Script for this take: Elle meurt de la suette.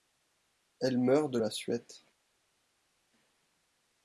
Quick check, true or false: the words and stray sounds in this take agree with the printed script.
true